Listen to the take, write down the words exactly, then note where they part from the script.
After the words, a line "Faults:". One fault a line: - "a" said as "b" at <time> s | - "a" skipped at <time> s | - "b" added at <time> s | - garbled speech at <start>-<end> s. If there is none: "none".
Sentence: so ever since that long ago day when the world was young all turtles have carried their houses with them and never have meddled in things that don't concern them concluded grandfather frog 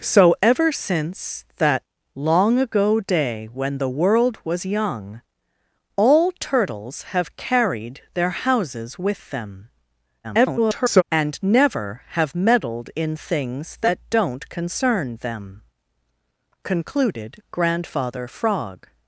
so ever since that long ago day when the world was young all turtles have carried their houses with them [garbled] and never have meddled in things that don't concern them concluded grandfather frog
Faults:
- garbled speech at 10.2-11.0 s